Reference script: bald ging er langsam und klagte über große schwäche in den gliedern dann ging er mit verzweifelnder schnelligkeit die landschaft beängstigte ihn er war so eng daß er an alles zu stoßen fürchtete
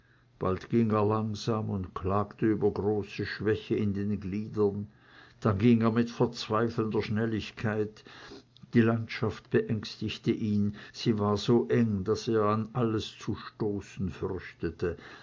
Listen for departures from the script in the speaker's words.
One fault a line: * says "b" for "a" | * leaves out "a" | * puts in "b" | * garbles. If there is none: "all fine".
* says "sie" for "er"